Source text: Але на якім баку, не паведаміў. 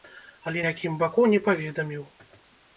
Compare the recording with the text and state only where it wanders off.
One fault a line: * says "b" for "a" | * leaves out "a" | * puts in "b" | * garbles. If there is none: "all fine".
* leaves out "на"